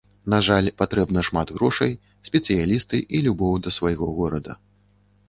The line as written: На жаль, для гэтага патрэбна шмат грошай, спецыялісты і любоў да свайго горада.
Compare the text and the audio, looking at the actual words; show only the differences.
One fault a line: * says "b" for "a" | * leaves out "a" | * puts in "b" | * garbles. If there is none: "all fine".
* leaves out "для гэтага"